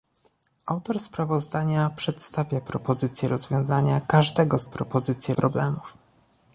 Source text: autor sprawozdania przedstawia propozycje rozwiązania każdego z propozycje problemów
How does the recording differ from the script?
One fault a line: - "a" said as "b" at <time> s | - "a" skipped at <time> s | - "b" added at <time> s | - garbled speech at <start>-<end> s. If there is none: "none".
none